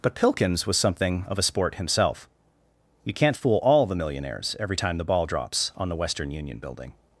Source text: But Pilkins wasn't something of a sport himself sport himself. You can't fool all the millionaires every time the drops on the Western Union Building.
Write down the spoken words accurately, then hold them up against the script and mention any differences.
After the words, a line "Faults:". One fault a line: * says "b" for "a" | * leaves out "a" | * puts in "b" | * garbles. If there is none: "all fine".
But Pilkins was something of a sport himself. You can't fool all the millionaires every time the ball drops on the Western Union Building.
Faults:
* says "was" for "wasn't"
* leaves out "sport himself"
* puts in "ball"